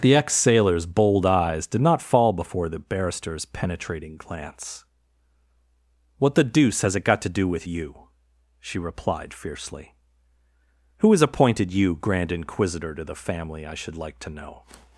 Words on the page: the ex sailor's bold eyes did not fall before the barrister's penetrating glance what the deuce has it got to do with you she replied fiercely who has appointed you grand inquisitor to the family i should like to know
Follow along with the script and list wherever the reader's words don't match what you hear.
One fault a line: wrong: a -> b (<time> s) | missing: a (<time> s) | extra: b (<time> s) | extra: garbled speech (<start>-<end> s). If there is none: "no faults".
no faults